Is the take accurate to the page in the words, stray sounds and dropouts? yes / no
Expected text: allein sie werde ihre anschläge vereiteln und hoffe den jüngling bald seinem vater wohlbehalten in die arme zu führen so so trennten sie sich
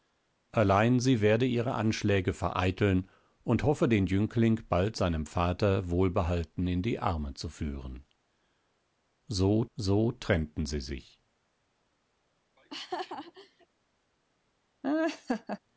no